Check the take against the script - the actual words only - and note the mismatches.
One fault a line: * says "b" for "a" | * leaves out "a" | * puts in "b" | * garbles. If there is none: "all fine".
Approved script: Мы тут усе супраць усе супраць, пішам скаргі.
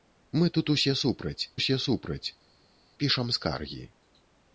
all fine